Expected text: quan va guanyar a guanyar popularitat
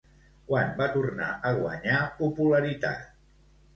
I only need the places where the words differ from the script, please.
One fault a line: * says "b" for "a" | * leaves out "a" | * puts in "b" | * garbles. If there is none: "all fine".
* says "tornar" for "guanyar"